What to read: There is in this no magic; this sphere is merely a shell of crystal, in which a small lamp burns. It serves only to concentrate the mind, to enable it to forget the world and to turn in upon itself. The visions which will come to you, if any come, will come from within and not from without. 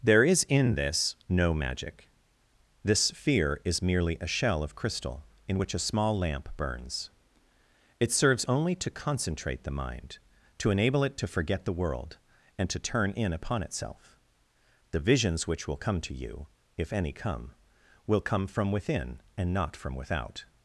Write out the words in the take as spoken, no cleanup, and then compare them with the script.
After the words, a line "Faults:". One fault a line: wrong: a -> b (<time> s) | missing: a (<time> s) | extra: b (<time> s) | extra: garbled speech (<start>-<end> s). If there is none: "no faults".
There is in this no magic; this sphere is merely a shell of crystal, in which a small lamp burns. It serves only to concentrate the mind, to enable it to forget the world and to turn in upon itself. The visions which will come to you, if any come, will come from within and not from without.
Faults:
no faults